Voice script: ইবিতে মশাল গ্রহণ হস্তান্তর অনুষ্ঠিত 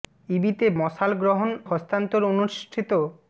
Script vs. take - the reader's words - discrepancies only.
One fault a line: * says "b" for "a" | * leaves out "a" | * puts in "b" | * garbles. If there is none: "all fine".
all fine